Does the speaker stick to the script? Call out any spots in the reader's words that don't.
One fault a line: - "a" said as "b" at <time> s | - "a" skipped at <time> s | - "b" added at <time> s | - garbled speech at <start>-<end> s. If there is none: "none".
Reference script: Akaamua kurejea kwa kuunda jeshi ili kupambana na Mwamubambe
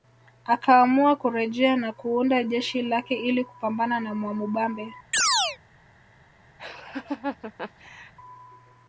- "kwa" said as "na" at 1.8 s
- "lake" added at 2.8 s